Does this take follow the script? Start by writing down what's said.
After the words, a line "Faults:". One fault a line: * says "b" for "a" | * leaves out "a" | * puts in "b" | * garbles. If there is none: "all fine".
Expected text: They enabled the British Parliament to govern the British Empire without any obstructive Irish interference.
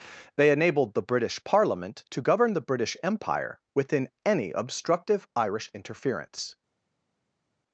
They enabled the British Parliament to govern the British Empire within any obstructive Irish interference.
Faults:
* says "within" for "without"